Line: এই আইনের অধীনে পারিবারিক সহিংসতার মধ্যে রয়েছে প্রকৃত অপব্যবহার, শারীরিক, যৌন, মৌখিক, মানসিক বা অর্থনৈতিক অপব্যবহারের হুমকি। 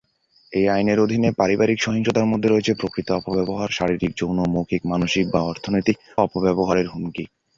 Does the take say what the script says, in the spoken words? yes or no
yes